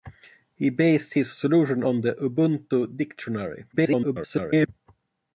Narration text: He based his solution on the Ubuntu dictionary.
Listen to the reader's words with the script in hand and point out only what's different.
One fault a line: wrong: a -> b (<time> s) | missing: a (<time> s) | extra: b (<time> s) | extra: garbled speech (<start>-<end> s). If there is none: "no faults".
extra: garbled speech (3.7-4.7 s)